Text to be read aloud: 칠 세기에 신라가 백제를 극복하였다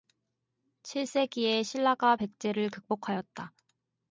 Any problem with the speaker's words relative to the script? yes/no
no